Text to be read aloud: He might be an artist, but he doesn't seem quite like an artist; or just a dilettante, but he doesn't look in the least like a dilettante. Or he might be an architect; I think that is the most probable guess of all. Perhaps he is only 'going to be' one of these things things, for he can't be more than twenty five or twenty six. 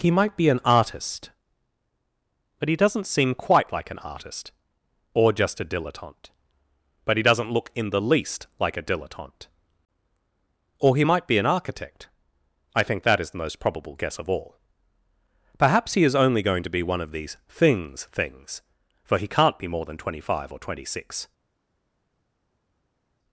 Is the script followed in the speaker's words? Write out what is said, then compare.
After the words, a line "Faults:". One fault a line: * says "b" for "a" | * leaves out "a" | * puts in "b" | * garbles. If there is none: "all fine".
He might be an artist, but he doesn't seem quite like an artist; or just a dilettante, but he doesn't look in the least like a dilettante. Or he might be an architect; I think that is the most probable guess of all. Perhaps he is only 'going to be' one of these things things, for he can't be more than twenty five or twenty six.
Faults:
all fine